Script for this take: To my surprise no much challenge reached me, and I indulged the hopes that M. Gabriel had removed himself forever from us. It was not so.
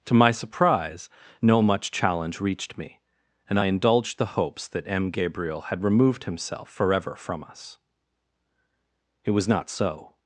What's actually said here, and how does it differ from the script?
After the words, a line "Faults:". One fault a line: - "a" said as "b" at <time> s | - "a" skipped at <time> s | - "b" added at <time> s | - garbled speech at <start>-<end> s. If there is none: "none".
To my surprise no much challenge reached me, and I indulged the hopes that M. Gabriel had removed himself forever from us. It was not so.
Faults:
none